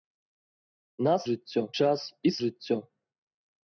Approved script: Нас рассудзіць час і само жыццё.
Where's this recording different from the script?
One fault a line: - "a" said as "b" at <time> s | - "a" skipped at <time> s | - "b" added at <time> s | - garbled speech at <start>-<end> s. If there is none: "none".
- "рассудзіць" said as "жыццё" at 1.3 s
- "само" skipped at 2.4 s